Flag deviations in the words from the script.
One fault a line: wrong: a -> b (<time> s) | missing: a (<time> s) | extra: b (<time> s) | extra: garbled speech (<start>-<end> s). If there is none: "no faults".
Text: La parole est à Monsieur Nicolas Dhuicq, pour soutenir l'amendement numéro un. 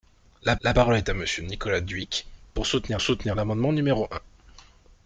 extra: la (0.6 s)
extra: soutenir (3.0 s)